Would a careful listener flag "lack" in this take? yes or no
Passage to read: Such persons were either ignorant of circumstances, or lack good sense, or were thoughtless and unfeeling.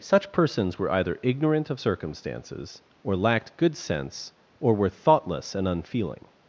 yes